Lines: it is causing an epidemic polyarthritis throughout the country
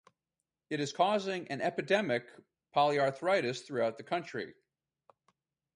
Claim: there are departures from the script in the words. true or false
false